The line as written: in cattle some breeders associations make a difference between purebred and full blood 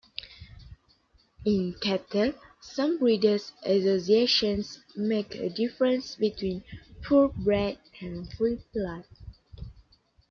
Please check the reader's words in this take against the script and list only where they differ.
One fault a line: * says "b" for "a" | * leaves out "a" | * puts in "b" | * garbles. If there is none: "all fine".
all fine